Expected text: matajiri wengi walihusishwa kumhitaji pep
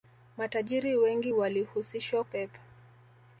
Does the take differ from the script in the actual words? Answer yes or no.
yes